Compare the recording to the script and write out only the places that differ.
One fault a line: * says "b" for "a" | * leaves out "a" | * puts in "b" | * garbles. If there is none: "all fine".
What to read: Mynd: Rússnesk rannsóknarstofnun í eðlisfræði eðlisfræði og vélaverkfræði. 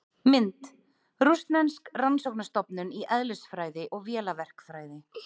* leaves out "eðlisfræði"